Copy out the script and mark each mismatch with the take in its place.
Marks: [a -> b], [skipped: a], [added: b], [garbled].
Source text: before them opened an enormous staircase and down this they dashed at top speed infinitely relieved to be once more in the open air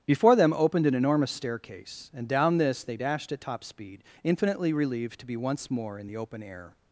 before them opened an enormous staircase and down this they dashed at top speed infinitely relieved to be once more in the open air